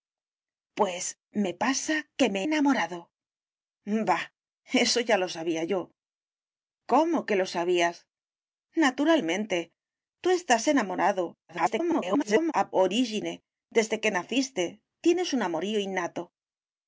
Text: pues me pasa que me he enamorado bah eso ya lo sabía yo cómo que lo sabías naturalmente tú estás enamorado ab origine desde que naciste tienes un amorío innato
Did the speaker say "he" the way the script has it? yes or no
no